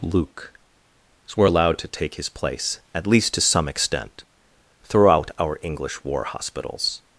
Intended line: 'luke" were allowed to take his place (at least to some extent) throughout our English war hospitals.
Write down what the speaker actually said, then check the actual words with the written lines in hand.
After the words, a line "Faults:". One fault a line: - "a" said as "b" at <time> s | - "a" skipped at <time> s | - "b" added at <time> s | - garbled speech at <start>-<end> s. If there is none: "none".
'luke" were allowed to take his place (at least to some extent) throughout our English war hospitals.
Faults:
none